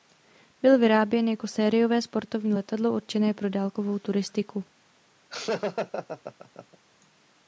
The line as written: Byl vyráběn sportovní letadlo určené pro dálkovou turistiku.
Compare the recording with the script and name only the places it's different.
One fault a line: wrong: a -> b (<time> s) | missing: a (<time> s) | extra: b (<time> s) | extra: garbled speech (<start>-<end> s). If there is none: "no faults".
extra: jako sériové (1.3 s)